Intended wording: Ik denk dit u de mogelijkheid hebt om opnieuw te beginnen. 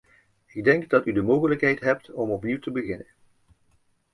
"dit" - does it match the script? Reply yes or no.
no